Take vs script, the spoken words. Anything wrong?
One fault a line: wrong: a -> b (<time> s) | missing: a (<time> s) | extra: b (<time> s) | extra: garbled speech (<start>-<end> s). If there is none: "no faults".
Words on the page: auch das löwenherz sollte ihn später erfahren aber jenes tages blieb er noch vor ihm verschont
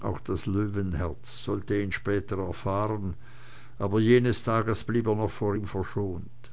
no faults